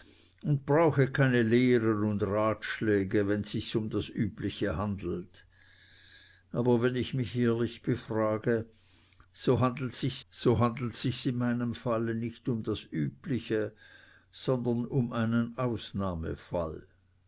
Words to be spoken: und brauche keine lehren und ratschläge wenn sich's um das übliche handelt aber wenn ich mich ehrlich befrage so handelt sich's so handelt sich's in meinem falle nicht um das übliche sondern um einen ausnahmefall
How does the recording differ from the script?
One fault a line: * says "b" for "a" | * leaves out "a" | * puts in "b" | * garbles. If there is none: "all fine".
all fine